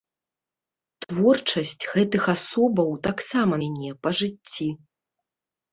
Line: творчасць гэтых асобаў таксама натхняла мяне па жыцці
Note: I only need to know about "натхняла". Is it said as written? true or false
false